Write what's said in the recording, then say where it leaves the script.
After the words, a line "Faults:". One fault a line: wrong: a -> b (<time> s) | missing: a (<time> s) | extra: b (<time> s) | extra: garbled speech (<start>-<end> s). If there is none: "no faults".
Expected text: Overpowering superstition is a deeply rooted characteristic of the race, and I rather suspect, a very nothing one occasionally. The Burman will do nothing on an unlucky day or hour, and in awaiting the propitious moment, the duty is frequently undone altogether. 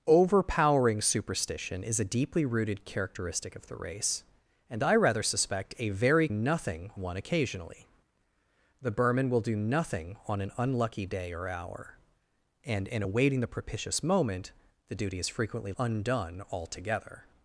Overpowering superstition is a deeply rooted characteristic of the race, and I rather suspect, a very nothing one occasionally. The Burman will do nothing on an unlucky day or hour, and in awaiting the propitious moment, the duty is frequently undone altogether.
Faults:
no faults